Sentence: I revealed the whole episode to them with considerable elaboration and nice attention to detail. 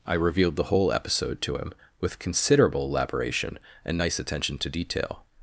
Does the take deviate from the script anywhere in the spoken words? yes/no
yes